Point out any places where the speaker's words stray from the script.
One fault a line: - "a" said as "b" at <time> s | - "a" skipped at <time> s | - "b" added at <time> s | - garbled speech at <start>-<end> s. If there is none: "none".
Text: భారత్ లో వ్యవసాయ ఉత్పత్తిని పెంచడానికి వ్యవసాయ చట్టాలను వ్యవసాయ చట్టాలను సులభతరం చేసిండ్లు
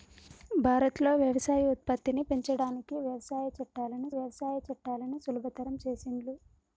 none